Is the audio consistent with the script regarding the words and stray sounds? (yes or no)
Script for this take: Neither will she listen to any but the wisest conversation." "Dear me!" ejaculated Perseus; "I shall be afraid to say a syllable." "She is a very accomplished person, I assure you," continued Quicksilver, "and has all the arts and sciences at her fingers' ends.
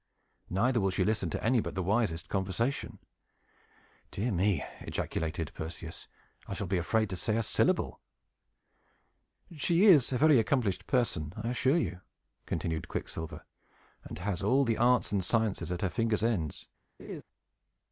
no